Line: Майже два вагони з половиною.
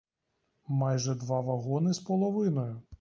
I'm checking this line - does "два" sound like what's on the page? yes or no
yes